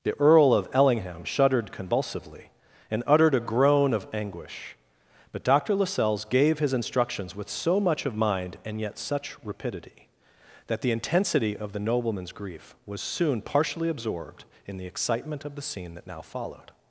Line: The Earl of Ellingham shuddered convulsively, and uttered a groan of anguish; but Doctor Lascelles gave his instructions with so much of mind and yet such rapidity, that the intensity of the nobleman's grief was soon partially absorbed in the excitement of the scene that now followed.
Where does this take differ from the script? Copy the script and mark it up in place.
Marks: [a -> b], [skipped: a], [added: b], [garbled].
The Earl of Ellingham shuddered convulsively, and uttered a groan of anguish; but Doctor Lascelles gave his instructions with so much of mind and yet such rapidity, that the intensity of the nobleman's grief was soon partially absorbed in the excitement of the scene that now followed.